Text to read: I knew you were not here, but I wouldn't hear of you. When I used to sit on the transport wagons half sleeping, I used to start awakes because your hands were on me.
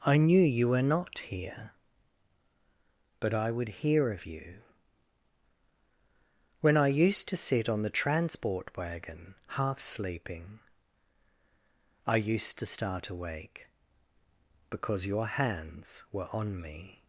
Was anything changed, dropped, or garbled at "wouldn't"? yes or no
yes